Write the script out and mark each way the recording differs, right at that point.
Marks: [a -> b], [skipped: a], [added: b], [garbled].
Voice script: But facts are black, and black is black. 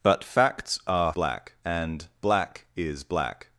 But facts are black, and black is black.